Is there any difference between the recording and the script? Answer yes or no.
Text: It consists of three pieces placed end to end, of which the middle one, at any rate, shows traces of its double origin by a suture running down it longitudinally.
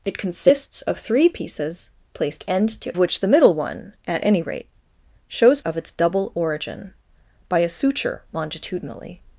yes